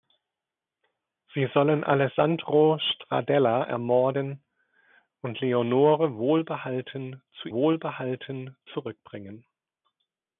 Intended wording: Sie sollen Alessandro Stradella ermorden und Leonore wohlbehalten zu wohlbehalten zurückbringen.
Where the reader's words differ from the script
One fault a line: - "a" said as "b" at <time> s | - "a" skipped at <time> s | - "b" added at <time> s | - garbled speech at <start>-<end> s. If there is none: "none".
none